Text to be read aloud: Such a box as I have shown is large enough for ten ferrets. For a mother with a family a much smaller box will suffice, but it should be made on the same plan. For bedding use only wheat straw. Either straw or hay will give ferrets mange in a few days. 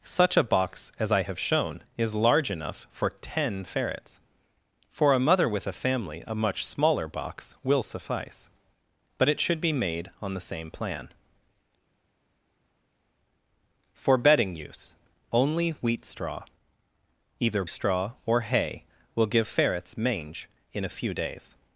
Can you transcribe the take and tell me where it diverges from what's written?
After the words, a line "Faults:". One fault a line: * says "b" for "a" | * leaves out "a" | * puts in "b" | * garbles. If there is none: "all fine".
Such a box as I have shown is large enough for ten ferrets. For a mother with a family a much smaller box will suffice, but it should be made on the same plan. For bedding use only wheat straw. Either straw or hay will give ferrets mange in a few days.
Faults:
all fine